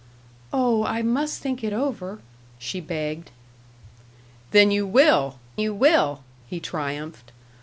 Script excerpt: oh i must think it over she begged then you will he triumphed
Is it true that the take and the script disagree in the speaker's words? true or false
true